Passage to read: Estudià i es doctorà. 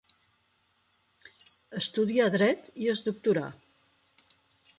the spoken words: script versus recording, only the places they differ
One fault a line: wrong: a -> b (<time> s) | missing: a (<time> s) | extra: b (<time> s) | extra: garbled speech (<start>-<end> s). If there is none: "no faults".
extra: dret (2.4 s)